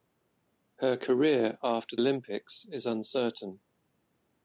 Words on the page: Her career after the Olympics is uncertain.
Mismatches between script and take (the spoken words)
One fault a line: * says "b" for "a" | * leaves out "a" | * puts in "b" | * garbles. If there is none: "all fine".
* leaves out "the"